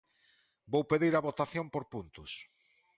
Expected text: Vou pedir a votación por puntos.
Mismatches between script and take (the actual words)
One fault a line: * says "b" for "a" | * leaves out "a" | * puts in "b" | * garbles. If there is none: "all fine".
all fine